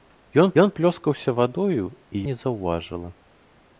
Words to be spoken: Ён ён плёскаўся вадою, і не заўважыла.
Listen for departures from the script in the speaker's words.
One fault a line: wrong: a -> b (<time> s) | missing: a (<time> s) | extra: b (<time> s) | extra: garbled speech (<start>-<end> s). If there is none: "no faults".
no faults